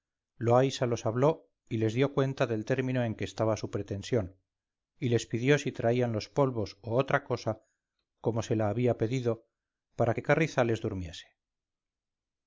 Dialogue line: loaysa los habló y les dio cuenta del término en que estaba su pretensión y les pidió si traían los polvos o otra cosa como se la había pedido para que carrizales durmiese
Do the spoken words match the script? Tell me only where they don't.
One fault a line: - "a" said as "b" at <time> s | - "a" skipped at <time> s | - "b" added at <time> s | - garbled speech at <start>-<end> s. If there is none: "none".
none